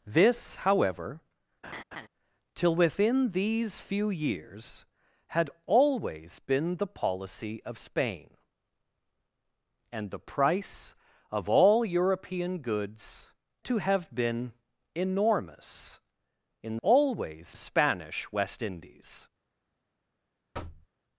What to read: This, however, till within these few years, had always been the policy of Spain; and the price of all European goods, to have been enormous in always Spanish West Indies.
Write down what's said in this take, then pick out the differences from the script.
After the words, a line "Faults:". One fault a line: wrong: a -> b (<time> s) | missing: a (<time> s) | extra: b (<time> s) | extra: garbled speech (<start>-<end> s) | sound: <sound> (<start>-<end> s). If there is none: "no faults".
This, however, till within these few years, had always been the policy of Spain; and the price of all European goods, to have been enormous in always Spanish West Indies.
Faults:
sound: laugh (1.6-2.1 s)
sound: thud (20.5-20.9 s)